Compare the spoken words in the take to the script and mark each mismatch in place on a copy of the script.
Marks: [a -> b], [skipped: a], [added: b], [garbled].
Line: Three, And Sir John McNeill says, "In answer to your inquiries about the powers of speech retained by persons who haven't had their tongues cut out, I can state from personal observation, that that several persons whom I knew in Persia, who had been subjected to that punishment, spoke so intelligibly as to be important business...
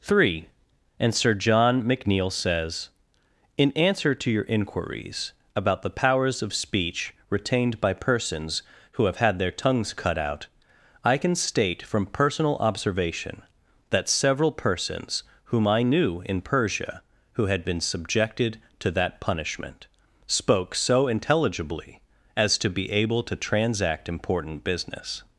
Three, And Sir John McNeill says, "In answer to your inquiries about the powers of speech retained by persons who [haven't -> have] had their tongues cut out, I can state from personal observation, that [skipped: that] several persons whom I knew in Persia, who had been subjected to that punishment, spoke so intelligibly as to be [added: able to transact] important business...